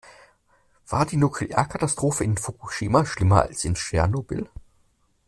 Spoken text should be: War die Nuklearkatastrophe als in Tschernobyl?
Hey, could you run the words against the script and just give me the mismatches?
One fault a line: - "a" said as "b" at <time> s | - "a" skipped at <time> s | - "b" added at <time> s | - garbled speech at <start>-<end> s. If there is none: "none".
- "in Fukushima schlimmer" added at 2.2 s